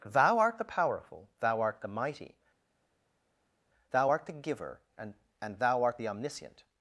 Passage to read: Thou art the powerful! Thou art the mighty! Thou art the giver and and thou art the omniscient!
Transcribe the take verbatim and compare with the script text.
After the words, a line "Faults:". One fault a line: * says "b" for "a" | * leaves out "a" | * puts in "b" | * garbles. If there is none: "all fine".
Thou art the powerful! Thou art the mighty! Thou art the giver and and thou art the omniscient!
Faults:
all fine